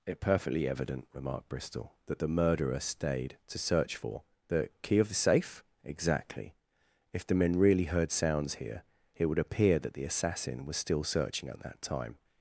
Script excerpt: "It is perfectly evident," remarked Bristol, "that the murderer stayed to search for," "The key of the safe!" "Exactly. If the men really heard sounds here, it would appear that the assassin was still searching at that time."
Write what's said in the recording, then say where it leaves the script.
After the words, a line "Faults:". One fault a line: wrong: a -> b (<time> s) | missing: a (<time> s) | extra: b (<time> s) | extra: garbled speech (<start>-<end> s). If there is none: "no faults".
"It perfectly evident," remarked Bristol, "that the murderer stayed to search for," "The key of the safe!" "Exactly. If the men really heard sounds here, it would appear that the assassin was still searching at that time."
Faults:
missing: is (0.2 s)